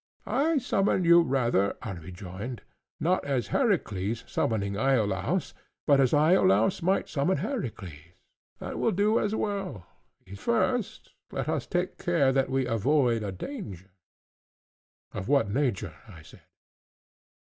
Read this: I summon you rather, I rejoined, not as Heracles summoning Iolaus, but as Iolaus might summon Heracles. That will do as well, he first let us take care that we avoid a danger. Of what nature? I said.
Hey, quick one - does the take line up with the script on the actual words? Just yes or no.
yes